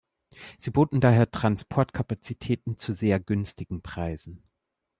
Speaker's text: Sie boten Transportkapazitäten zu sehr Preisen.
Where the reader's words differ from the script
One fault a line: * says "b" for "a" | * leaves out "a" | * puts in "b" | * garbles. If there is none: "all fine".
* puts in "daher"
* puts in "günstigen"